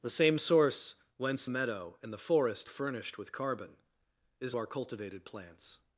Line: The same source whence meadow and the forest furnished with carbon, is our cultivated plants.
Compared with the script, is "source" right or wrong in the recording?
right